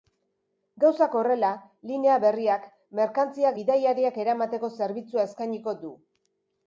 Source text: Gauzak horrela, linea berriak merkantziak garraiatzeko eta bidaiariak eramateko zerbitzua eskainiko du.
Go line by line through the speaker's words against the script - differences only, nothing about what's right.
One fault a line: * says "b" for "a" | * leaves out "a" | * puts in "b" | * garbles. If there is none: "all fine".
* leaves out "garraiatzeko eta"